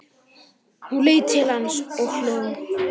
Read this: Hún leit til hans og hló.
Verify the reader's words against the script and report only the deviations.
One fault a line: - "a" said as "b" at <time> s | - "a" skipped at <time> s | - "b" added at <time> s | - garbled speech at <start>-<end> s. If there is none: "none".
none